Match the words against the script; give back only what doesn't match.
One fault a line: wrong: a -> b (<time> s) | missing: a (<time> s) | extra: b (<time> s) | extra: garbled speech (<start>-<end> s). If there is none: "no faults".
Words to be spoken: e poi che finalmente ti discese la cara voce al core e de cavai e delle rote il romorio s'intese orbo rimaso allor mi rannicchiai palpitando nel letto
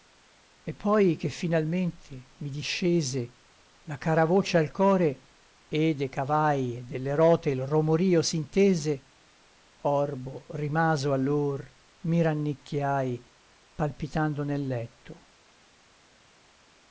wrong: ti -> mi (2.4 s)